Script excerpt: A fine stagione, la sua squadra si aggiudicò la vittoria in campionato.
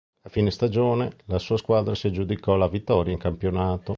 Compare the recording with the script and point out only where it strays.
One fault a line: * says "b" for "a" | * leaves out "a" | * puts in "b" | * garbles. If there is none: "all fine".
all fine